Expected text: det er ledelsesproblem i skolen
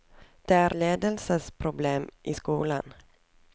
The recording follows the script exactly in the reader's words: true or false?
true